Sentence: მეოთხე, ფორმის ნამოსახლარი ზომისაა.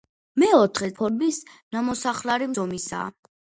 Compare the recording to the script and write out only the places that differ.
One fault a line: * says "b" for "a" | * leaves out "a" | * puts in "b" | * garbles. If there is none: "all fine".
all fine